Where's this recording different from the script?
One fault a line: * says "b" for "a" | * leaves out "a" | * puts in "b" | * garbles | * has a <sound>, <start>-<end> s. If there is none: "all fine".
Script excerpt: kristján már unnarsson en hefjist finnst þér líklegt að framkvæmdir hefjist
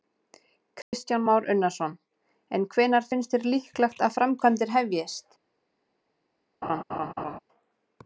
* has a dropout, 0.8-0.9 s
* says "hvenær" for "hefjist"
* has a laugh, 6.6-7.4 s